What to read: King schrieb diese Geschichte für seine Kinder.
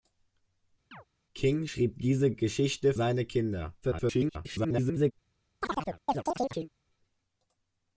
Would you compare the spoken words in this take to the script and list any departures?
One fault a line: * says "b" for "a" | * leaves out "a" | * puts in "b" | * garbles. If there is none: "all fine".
* leaves out "für"
* garbles